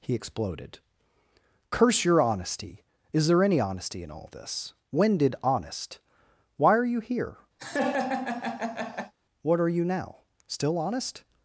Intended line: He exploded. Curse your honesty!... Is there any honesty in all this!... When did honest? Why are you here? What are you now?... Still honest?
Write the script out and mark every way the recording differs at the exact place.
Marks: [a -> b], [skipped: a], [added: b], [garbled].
He exploded. Curse your honesty!... Is there any honesty in all this!... When did honest? Why are you here? What are you now?... Still honest?